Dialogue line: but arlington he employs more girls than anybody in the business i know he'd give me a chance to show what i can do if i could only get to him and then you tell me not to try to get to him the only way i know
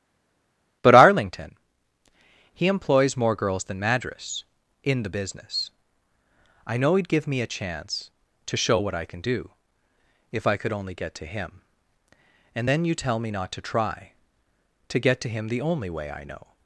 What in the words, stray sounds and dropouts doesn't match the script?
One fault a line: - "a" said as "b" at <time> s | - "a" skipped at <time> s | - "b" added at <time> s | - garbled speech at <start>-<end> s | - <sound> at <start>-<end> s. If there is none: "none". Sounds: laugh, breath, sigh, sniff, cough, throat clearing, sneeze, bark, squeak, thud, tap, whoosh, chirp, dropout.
- "anybody" said as "madras" at 3.8 s